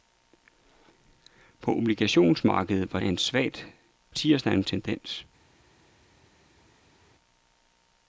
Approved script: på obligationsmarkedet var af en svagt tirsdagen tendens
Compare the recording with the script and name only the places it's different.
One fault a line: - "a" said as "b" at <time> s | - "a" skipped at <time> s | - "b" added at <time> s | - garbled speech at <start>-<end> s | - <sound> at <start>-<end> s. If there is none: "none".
none